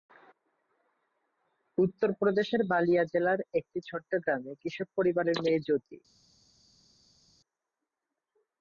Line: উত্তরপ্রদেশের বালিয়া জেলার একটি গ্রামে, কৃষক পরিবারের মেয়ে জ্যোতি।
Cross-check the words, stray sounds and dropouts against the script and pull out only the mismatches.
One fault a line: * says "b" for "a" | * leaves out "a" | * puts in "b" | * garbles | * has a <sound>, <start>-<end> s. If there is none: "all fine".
* puts in "ছোট্ট"